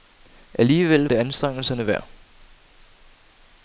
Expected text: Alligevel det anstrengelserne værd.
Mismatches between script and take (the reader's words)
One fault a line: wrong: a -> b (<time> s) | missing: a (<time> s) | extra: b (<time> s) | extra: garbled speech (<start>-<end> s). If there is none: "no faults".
no faults